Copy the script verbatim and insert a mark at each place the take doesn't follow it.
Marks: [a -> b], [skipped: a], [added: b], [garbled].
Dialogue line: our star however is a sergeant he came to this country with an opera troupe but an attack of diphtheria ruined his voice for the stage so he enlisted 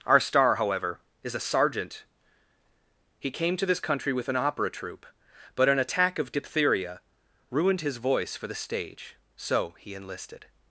our star however is a sergeant he came to this country with an opera troupe but an attack of diphtheria ruined his voice for the stage so he enlisted